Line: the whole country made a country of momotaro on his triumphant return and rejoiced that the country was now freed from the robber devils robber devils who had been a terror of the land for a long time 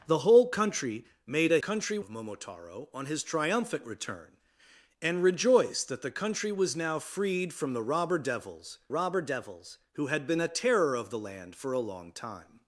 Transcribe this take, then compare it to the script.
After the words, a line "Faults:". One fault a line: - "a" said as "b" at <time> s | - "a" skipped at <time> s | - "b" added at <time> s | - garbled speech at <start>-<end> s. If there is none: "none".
the whole country made a country of momotaro on his triumphant return and rejoiced that the country was now freed from the robber devils robber devils who had been a terror of the land for a long time
Faults:
none